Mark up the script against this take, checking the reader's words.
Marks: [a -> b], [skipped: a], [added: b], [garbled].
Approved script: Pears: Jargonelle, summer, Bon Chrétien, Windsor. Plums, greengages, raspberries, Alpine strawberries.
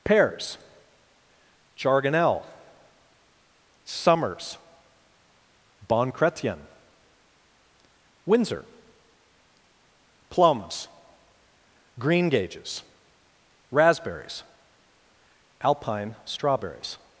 Pears: Jargonelle, [summer, -> summers] Bon Chrétien, Windsor. Plums, greengages, raspberries, Alpine strawberries.